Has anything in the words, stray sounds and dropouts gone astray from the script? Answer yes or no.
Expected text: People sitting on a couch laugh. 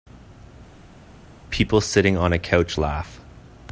no